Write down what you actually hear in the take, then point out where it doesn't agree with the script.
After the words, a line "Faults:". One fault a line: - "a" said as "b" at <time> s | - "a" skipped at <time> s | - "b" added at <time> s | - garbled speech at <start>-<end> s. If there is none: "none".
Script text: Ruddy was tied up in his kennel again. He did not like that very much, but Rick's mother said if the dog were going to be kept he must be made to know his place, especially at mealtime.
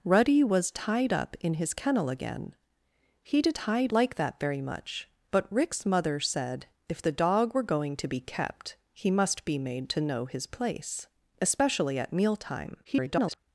Ruddy was tied up in his kennel again. He did tied like that very much, but Rick's mother said if the dog were going to be kept he must be made to know his place, especially at mealtime. [garbled]
Faults:
- "not" said as "tied" at 3.5 s
- garbled speech at 12.8-13.4 s